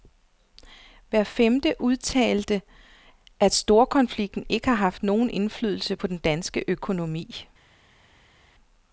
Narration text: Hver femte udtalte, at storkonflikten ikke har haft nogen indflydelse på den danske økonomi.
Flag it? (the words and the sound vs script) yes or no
no